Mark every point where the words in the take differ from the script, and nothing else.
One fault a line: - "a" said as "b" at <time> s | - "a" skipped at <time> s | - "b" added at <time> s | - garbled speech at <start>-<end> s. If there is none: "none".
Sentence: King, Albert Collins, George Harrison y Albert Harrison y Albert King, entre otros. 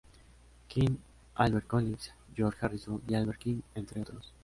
- "Harrison y Albert" skipped at 3.4 s